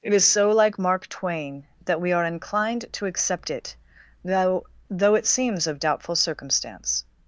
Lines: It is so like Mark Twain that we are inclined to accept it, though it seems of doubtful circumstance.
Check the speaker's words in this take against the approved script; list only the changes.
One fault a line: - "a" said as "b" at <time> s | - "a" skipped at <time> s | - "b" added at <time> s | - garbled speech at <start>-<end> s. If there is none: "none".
- "though" added at 4.9 s